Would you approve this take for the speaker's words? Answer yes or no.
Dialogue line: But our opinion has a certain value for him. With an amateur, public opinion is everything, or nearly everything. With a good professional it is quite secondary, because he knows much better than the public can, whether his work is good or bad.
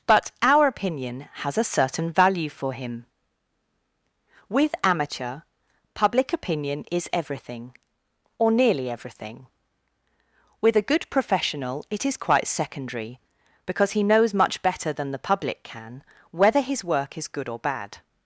no